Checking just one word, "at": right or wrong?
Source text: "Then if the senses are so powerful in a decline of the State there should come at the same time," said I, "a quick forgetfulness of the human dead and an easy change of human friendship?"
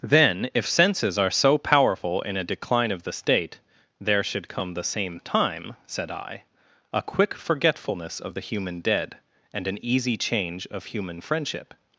wrong